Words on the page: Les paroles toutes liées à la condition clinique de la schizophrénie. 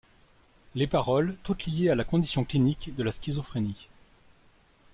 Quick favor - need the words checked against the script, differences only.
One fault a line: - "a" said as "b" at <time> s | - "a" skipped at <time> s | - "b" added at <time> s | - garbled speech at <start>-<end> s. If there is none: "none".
none